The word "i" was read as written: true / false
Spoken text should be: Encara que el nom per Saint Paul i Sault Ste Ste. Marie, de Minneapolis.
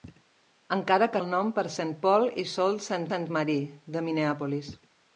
true